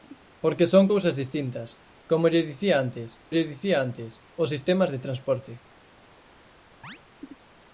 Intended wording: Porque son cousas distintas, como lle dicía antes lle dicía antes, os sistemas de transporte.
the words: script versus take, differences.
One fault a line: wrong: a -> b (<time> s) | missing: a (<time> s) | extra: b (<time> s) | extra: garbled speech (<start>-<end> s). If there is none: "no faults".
no faults